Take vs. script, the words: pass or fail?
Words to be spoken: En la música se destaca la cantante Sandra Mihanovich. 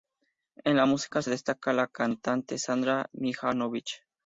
pass